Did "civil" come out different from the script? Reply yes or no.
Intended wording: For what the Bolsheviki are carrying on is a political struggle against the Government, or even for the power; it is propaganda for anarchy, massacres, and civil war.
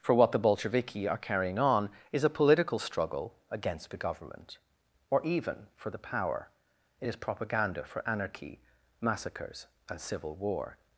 no